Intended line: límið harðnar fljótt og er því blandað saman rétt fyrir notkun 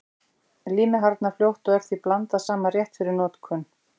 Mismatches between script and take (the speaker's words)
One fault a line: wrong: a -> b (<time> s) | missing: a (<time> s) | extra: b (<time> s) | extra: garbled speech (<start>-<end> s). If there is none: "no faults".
no faults